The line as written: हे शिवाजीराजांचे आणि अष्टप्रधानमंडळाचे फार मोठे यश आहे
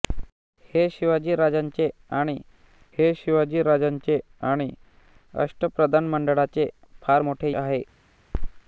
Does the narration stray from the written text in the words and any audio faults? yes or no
yes